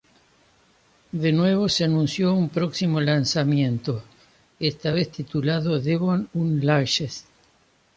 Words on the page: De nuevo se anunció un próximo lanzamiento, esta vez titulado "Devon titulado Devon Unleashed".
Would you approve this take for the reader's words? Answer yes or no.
no